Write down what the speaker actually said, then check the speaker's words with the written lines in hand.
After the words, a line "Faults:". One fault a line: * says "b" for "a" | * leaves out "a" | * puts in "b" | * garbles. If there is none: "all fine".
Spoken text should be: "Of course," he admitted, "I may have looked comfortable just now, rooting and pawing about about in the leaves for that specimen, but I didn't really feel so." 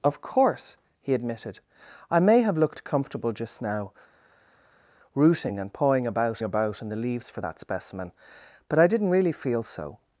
"Of course," he admitted, "I may have looked comfortable just now, rooting and pawing about about in the leaves for that specimen, but I didn't really feel so."
Faults:
all fine